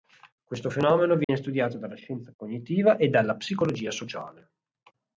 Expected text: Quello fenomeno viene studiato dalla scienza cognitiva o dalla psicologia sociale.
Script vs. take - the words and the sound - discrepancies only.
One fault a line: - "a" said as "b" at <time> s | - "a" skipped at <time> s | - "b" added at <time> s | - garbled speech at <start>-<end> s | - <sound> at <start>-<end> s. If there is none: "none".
- "Quello" said as "Questo" at 0.4 s
- dropout at 1.2-1.3 s
- "o" said as "e" at 3.0 s